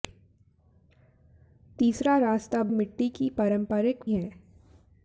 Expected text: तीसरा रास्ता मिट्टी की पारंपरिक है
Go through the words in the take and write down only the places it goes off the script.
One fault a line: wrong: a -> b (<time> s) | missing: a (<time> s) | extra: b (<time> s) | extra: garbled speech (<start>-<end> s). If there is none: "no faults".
no faults